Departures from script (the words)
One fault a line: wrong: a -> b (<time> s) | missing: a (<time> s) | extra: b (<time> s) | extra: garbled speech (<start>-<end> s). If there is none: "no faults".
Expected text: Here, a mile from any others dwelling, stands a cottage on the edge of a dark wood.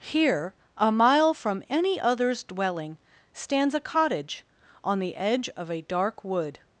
no faults